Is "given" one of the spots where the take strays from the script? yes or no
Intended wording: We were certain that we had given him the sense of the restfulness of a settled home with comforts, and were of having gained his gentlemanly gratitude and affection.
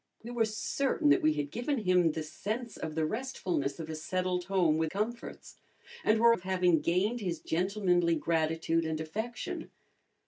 no